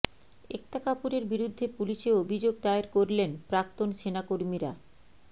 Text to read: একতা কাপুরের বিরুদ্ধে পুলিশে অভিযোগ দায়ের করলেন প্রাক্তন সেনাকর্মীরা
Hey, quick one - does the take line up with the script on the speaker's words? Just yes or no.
yes